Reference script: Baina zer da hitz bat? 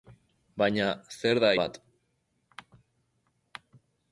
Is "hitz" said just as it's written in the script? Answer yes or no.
no